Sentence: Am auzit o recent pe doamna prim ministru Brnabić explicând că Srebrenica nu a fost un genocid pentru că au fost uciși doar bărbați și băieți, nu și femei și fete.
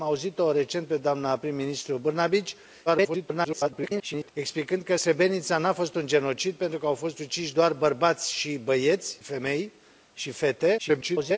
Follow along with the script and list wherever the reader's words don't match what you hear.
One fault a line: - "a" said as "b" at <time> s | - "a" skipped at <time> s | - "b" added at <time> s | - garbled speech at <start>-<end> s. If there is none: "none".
- garbled speech at 2.9-4.3 s
- "nu și" skipped at 9.2 s
- garbled speech at 10.8-11.4 s